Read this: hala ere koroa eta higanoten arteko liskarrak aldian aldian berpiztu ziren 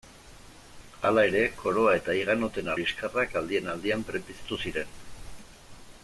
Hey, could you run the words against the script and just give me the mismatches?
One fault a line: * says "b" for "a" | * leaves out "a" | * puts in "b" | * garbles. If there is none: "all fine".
* leaves out "arteko"